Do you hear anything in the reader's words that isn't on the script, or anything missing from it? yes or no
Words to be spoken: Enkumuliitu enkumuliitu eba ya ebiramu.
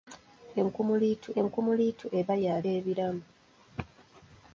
no